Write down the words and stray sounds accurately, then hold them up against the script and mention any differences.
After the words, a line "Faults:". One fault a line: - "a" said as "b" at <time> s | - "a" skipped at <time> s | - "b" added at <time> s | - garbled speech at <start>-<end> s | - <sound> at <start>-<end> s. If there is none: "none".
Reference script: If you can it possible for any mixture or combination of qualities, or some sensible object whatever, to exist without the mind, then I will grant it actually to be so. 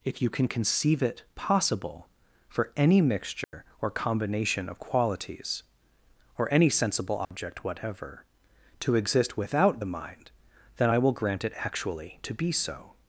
If you can conceive it possible for any mixture or combination of qualities, or any sensible object whatever, to exist without the mind, then I will grant it actually to be so.
Faults:
- "conceive" added at 0.5 s
- dropout at 3.4-3.5 s
- "some" said as "any" at 6.5 s
- dropout at 7.2-7.3 s